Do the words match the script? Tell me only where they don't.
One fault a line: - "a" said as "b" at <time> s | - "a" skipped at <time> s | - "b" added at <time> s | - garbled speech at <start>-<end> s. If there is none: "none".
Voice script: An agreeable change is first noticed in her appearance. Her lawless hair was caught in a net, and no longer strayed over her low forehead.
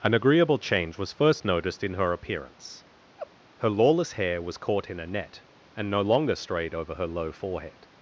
- "is" said as "was" at 1.0 s